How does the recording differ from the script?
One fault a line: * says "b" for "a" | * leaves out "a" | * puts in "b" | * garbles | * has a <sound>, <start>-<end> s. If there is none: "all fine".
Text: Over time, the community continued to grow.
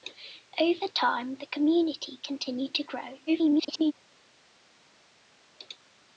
* garbles